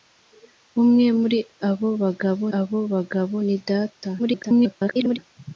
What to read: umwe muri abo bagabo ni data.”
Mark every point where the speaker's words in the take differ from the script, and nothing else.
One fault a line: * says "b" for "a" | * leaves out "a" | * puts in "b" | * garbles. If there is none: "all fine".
* puts in "abo bagabo"
* garbles